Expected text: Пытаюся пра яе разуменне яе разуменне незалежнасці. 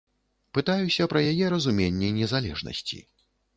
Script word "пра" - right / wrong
right